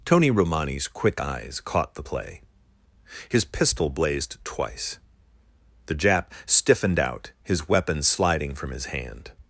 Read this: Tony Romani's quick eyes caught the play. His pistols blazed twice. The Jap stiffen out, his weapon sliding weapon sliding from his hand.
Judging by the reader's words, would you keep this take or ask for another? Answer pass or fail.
fail